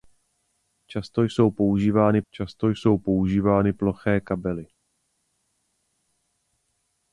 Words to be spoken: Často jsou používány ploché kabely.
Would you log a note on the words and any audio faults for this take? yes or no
yes